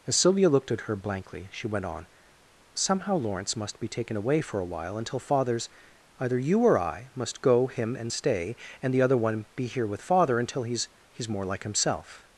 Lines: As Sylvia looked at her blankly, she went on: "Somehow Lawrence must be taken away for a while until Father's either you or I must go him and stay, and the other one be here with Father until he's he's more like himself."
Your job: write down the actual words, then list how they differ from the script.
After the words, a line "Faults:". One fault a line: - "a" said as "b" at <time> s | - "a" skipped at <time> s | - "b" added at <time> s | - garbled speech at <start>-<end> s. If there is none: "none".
As Sylvia looked at her blankly, she went on: "Somehow Lawrence must be taken away for a while until Father's either you or I must go him and stay, and the other one be here with Father until he's he's more like himself."
Faults:
none